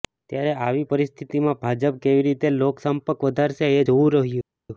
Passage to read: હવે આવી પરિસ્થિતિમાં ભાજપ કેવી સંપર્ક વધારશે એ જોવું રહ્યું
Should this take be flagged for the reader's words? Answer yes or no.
yes